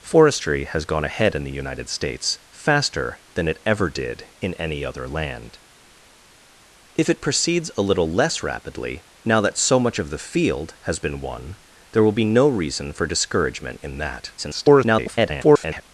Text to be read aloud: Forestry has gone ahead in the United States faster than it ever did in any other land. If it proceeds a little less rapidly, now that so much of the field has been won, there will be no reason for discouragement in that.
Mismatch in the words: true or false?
true